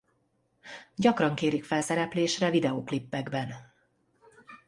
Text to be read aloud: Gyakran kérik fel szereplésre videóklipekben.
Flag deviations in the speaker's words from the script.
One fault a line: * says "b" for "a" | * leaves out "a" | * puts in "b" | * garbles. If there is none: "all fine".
all fine